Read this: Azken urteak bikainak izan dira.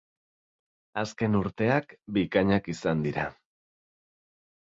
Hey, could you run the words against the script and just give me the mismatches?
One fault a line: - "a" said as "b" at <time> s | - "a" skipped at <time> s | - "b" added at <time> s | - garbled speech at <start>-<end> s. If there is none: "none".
none